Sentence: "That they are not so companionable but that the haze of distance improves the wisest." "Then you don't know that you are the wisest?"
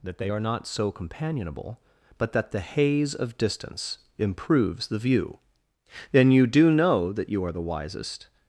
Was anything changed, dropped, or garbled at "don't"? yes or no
yes